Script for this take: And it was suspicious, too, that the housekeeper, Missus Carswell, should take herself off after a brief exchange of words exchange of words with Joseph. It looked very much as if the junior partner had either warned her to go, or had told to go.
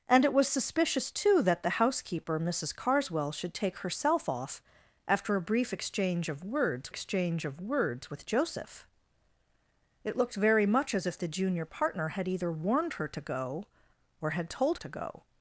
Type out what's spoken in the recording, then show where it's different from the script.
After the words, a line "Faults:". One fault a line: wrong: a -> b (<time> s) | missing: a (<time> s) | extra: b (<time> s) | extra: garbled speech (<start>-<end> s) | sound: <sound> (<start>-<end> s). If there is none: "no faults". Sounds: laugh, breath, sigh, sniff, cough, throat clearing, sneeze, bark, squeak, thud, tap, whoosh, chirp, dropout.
And it was suspicious, too, that the housekeeper, Missus Carswell, should take herself off after a brief exchange of words exchange of words with Joseph. It looked very much as if the junior partner had either warned her to go, or had told to go.
Faults:
no faults